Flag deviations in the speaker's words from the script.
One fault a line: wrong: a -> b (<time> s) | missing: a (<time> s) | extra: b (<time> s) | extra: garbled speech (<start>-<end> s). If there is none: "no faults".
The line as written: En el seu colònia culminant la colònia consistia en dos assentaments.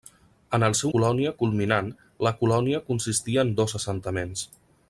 no faults